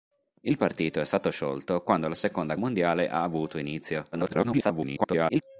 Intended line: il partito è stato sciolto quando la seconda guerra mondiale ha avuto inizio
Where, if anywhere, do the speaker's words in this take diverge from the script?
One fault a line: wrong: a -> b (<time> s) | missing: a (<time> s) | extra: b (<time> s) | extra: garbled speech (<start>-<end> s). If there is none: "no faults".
missing: guerra (2.5 s)
extra: garbled speech (4.1-5.4 s)